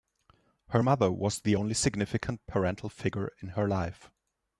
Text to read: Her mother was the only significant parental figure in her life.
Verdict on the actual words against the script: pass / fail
pass